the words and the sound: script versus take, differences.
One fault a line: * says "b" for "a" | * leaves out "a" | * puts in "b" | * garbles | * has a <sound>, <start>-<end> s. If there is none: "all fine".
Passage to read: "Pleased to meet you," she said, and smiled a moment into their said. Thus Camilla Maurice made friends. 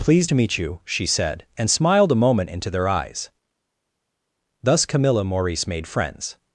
* says "eyes" for "said"